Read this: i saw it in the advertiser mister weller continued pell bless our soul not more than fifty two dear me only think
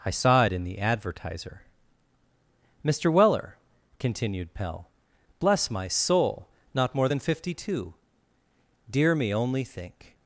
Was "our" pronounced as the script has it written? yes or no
no